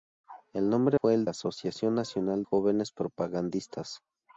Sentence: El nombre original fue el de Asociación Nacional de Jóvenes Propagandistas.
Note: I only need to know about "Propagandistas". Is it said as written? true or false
true